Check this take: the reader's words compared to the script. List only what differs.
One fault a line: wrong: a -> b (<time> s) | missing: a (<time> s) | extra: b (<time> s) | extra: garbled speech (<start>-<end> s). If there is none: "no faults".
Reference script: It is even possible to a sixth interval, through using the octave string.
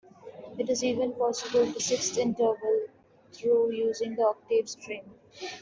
no faults